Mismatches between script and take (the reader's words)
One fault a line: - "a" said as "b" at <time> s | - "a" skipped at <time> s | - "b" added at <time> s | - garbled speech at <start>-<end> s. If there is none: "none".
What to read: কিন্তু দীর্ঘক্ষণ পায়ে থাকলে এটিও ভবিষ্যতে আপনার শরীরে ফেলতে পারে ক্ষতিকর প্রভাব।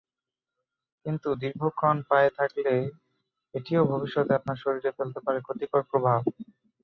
none